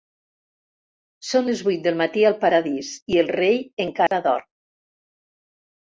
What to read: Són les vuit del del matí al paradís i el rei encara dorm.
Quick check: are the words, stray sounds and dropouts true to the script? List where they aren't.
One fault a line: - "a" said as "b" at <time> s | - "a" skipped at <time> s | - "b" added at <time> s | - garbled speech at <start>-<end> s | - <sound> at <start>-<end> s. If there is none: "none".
- "del" skipped at 2.0 s
- dropout at 4.1-4.1 s